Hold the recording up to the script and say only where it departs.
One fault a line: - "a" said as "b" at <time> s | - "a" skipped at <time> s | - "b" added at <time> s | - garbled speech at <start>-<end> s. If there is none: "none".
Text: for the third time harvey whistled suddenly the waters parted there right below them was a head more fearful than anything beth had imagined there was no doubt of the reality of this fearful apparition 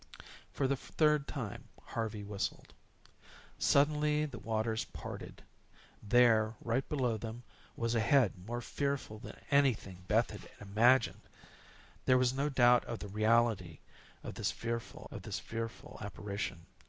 - "of this fearful" added at 15.1 s